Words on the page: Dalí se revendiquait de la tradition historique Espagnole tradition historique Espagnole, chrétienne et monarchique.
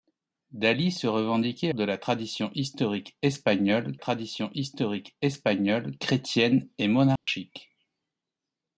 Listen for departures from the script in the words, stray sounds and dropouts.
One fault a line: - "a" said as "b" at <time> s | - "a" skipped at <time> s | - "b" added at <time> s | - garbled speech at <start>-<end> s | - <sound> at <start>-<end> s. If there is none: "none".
- dropout at 7.2-7.3 s